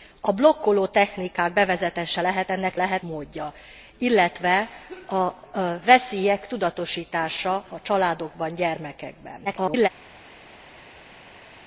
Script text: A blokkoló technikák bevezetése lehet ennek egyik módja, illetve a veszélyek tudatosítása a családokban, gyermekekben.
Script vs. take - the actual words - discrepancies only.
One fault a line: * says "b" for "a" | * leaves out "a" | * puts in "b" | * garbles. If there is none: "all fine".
* says "lehet" for "egyik"
* garbles